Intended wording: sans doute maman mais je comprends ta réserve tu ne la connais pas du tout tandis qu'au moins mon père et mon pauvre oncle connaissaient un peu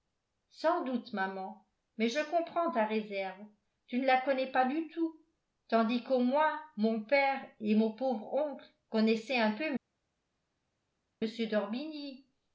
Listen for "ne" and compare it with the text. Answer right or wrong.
right